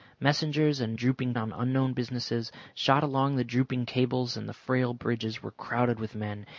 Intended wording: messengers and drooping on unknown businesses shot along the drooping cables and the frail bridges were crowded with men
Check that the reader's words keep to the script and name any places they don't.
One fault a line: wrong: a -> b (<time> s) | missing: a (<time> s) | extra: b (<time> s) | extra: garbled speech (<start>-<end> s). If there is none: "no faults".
no faults